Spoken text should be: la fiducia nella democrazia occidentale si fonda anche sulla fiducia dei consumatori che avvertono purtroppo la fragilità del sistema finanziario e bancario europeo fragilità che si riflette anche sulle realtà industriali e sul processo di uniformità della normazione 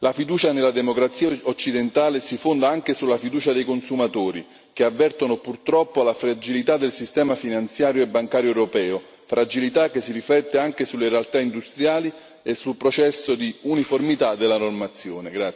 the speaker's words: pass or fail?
pass